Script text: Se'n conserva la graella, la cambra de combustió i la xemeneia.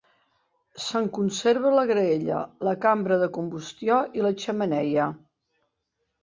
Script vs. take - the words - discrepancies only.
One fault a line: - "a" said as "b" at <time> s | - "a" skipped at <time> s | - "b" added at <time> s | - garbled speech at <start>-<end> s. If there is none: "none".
none